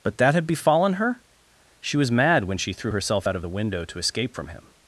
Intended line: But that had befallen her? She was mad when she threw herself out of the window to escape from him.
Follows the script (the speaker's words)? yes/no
yes